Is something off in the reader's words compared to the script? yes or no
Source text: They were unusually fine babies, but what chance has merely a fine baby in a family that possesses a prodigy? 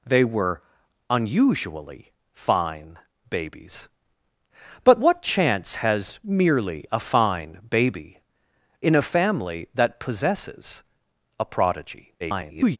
yes